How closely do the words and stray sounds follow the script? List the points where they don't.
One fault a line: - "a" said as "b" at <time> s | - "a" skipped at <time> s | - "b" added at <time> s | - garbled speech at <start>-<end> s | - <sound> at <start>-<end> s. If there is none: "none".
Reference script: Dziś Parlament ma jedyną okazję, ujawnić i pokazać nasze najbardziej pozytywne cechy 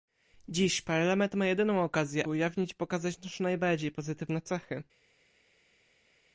none